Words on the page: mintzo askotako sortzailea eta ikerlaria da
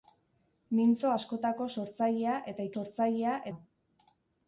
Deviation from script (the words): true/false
true